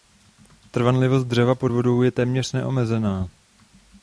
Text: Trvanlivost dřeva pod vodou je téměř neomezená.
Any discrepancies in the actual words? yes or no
no